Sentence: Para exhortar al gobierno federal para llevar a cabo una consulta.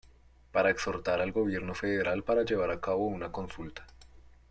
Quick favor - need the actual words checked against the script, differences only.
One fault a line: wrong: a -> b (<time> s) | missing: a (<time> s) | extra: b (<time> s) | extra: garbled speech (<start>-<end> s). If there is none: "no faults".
no faults